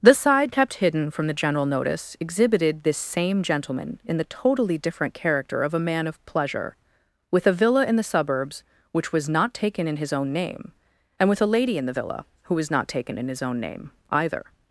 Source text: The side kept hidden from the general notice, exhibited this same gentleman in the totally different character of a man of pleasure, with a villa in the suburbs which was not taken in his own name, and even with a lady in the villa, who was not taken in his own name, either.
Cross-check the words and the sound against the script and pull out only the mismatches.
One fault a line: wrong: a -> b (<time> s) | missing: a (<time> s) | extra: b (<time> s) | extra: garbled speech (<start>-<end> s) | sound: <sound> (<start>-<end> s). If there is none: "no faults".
missing: even (11.3 s)